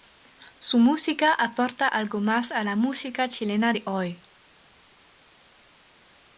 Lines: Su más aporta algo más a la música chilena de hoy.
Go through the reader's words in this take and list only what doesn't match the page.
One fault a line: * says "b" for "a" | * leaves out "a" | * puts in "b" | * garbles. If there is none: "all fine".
* says "música" for "más"